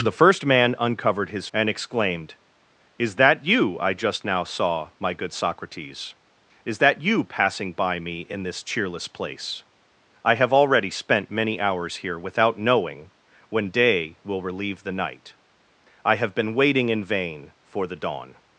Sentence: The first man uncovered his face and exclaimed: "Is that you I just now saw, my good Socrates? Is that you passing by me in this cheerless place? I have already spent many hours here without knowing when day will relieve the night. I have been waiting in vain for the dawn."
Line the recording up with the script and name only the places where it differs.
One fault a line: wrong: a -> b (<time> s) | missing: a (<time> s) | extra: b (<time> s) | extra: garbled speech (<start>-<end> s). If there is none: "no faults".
missing: face (1.5 s)